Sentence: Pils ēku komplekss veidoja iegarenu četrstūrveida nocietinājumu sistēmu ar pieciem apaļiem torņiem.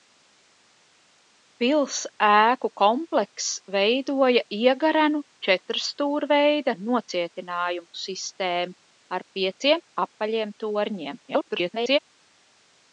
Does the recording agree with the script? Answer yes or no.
no